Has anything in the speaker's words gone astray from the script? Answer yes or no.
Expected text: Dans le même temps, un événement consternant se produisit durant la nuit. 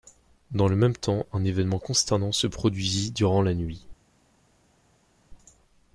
no